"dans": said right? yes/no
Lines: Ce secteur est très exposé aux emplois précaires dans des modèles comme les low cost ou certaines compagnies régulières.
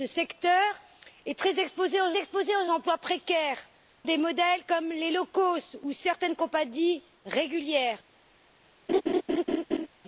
no